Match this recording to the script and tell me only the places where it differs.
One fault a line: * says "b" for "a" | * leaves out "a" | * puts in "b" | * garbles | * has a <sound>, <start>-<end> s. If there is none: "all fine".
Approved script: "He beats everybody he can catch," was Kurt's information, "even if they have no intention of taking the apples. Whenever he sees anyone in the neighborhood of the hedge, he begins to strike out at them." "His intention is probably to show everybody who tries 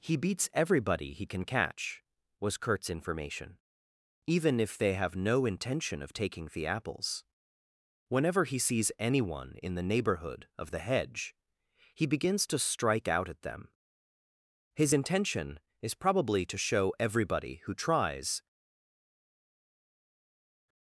all fine